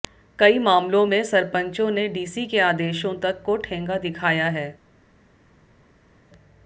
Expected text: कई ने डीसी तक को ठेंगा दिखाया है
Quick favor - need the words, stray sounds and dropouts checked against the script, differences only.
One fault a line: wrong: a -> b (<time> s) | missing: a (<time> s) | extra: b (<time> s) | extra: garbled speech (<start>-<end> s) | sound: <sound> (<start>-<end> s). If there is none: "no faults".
extra: मामलों में सरपंचों (0.6 s)
extra: के आदेशों (2.5 s)